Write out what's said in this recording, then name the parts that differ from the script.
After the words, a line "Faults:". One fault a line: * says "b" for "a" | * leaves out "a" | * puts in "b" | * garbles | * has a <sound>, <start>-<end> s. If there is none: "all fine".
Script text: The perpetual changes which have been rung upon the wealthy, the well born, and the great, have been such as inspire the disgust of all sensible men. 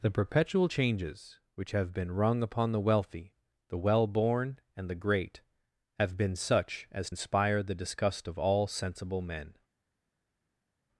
The perpetual changes which have been rung upon the wealthy, the well born, and the great, have been such as inspire the disgust of all sensible men.
Faults:
all fine